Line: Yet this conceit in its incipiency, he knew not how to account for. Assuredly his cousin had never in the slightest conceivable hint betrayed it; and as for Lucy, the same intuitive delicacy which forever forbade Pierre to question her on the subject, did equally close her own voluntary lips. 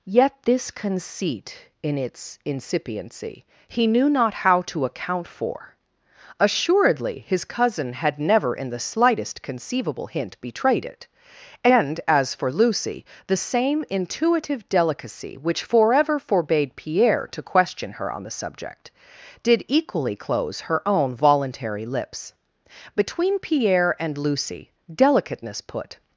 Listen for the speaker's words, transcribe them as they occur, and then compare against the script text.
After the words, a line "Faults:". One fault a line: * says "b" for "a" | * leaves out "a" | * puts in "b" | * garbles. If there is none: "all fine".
Yet this conceit in its incipiency, he knew not how to account for. Assuredly his cousin had never in the slightest conceivable hint betrayed it; and as for Lucy, the same intuitive delicacy which forever forbade Pierre to question her on the subject, did equally close her own voluntary lips. Between Pierre and Lucy, delicateness put
Faults:
* puts in "Between Pierre and Lucy delicateness put"